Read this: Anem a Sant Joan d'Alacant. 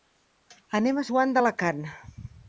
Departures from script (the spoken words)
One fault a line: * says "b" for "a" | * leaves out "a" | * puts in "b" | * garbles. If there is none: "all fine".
* leaves out "Sant"